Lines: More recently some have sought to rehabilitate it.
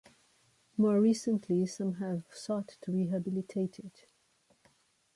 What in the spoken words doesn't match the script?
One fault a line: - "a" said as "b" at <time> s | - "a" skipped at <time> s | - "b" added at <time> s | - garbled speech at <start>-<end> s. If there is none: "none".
none